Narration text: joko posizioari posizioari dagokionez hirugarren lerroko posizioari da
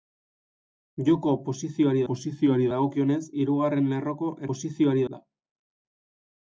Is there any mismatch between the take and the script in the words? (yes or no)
no